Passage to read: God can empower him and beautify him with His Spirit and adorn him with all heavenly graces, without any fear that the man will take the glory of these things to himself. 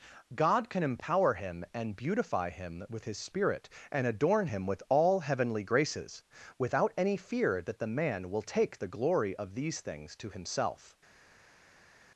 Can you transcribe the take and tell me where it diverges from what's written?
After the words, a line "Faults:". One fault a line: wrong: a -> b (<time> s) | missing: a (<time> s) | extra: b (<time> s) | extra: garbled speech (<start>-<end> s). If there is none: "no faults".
God can empower him and beautify him with His Spirit and adorn him with all heavenly graces, without any fear that the man will take the glory of these things to himself.
Faults:
no faults